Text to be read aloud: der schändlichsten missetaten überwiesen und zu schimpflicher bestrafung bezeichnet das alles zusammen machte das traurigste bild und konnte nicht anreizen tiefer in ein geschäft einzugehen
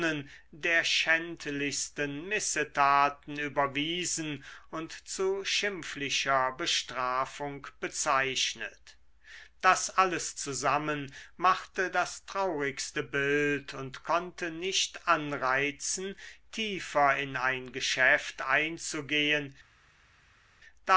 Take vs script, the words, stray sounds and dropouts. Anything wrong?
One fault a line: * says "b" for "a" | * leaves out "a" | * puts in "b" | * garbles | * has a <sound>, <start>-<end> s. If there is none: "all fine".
all fine